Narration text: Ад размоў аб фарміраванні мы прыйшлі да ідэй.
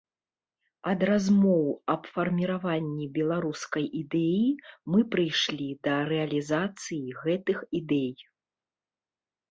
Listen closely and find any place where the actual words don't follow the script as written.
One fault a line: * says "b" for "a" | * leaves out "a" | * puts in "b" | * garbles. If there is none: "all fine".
* puts in "беларускай ідэі"
* puts in "рэалізацыі гэтых"